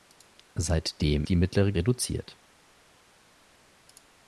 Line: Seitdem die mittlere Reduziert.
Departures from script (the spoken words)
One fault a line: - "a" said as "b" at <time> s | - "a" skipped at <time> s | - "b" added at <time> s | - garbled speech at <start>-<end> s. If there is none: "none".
none